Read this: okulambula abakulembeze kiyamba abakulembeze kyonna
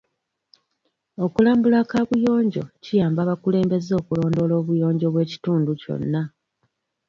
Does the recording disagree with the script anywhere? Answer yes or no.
yes